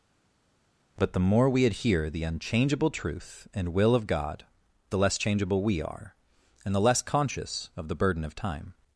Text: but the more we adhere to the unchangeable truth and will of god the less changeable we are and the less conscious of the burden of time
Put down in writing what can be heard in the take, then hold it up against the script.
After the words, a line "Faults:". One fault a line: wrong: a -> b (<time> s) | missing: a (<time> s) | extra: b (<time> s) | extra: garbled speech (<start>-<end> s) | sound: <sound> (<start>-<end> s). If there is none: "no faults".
but the more we adhere the unchangeable truth and will of god the less changeable we are and the less conscious of the burden of time
Faults:
missing: to (2.1 s)